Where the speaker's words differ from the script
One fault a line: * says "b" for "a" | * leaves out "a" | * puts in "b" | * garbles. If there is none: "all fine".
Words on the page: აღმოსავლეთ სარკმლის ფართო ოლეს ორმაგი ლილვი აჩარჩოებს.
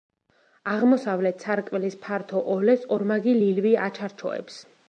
all fine